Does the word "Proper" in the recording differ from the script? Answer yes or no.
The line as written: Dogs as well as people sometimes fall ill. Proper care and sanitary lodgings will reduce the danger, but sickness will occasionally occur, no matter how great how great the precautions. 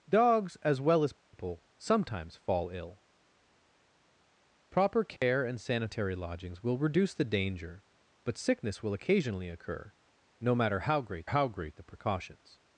no